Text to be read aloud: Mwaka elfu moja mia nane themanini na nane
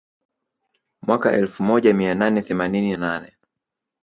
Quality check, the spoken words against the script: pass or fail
fail